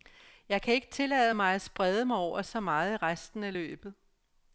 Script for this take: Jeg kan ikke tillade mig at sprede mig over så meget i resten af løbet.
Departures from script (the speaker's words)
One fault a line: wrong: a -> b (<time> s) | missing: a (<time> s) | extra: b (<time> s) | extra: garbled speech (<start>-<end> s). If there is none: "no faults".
no faults